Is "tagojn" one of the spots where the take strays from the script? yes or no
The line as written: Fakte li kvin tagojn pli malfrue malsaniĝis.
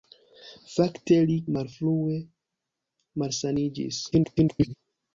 yes